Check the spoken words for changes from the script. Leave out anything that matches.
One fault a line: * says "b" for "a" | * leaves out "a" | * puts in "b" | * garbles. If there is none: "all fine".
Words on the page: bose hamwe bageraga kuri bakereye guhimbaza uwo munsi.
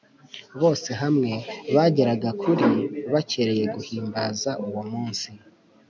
all fine